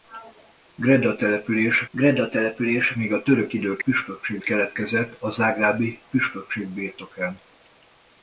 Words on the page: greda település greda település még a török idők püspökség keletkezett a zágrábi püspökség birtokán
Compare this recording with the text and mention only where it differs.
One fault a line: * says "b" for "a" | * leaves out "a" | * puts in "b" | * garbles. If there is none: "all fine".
all fine